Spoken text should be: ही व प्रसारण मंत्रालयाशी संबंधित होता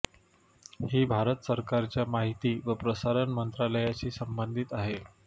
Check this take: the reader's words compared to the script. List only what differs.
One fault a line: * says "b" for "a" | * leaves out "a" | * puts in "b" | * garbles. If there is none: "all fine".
* puts in "भारत सरकारच्या माहिती"
* says "आहे" for "होता"